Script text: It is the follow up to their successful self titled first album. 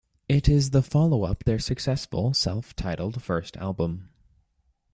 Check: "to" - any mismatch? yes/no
yes